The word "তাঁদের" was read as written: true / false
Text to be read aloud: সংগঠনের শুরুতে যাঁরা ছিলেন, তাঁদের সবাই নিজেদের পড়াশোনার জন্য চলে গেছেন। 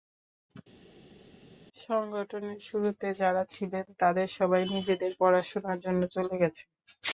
true